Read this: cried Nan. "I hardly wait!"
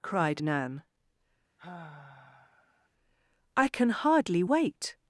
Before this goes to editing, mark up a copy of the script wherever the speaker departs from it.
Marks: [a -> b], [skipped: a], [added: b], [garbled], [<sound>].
cried Nan. [sigh] "I [added: can] hardly wait!"